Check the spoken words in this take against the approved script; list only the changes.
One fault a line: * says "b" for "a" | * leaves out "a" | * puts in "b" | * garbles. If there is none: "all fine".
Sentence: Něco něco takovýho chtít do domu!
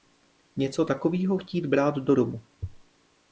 * leaves out "něco"
* puts in "brát"